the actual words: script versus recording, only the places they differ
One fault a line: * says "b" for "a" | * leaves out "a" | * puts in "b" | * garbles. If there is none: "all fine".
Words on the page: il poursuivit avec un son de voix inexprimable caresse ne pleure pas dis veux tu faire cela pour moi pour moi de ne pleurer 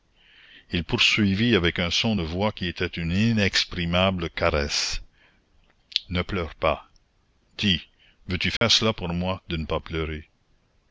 * puts in "qui était une"
* leaves out "pour moi"
* puts in "pas"